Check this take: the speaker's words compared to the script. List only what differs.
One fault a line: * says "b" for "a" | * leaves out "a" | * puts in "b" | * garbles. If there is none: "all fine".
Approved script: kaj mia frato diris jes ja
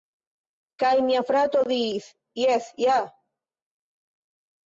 all fine